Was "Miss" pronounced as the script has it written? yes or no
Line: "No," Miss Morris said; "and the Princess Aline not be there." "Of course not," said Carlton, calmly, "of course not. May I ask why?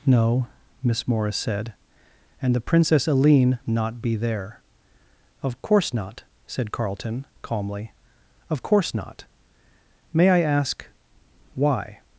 yes